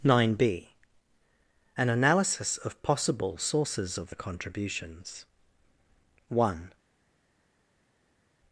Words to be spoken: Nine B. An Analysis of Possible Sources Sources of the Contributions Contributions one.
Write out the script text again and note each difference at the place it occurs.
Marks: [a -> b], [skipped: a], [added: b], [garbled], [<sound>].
Nine B. An Analysis of Possible Sources [skipped: Sources] of the Contributions [skipped: Contributions] one.